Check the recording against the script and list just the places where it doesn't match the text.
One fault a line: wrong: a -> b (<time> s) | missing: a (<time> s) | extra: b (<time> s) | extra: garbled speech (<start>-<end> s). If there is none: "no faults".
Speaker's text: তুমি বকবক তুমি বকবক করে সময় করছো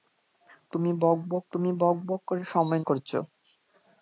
no faults